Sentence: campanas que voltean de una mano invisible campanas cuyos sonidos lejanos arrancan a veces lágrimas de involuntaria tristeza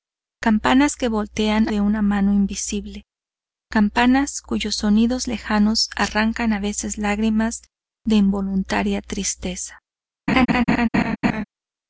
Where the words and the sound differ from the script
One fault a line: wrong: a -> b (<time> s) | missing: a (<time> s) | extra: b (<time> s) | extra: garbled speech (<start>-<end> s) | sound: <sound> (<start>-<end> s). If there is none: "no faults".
sound: laugh (10.3-11.4 s)